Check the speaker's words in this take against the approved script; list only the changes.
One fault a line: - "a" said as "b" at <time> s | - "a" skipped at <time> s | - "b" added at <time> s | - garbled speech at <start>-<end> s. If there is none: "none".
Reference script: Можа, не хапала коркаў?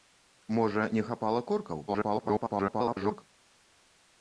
- garbled speech at 1.9-3.2 s